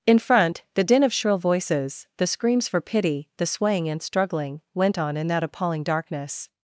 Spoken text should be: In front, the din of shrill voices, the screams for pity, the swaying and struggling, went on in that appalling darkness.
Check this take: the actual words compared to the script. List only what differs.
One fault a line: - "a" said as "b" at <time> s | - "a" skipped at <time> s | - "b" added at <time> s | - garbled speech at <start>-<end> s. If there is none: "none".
none